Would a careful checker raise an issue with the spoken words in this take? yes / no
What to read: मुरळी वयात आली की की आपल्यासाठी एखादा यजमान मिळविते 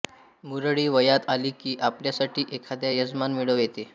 yes